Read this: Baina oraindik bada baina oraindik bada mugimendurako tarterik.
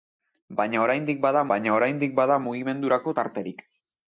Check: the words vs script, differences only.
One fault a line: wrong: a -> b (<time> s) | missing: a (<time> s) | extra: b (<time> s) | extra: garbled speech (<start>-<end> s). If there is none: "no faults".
no faults